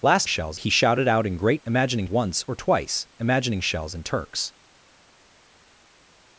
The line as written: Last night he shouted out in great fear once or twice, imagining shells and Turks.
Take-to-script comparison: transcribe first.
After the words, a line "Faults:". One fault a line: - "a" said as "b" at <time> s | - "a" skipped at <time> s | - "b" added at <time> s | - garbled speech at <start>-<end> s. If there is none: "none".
Last shells he shouted out in great imagining once or twice, imagining shells and Turks.
Faults:
- "night" said as "shells" at 0.2 s
- "fear" said as "imagining" at 1.7 s